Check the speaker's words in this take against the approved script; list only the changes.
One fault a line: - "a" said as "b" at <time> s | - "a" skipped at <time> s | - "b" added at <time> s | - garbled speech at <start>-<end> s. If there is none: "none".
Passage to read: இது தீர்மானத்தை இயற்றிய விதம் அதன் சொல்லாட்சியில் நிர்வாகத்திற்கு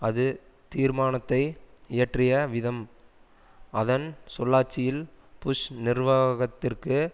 - "இது" said as "அது" at 0.0 s
- "புஷ்" added at 5.4 s